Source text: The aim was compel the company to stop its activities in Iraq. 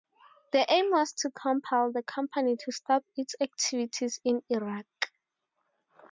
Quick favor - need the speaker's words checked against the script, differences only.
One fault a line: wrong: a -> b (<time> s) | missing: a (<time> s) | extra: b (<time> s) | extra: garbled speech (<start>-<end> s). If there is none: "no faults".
extra: to (1.2 s)